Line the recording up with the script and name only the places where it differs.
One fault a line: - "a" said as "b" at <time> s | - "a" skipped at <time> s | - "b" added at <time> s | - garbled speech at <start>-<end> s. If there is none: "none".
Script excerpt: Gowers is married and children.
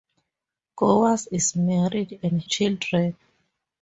none